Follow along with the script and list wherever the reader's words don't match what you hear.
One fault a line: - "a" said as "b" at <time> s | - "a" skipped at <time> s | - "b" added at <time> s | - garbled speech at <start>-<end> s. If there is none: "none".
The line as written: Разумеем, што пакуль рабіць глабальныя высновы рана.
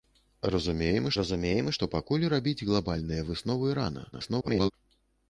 - "разумеем" added at 1.2 s
- garbled speech at 4.1-4.7 s